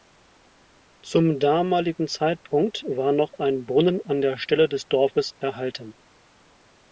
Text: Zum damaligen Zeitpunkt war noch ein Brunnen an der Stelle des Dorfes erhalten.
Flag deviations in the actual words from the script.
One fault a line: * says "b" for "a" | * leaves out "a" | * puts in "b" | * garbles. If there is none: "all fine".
all fine